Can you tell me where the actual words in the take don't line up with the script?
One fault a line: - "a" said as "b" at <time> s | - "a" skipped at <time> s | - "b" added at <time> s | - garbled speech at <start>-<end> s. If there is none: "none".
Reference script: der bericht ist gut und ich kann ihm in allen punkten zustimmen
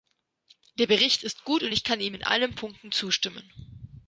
none